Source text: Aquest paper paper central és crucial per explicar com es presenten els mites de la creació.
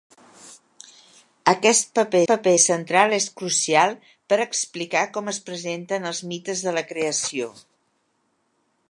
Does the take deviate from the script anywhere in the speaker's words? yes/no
no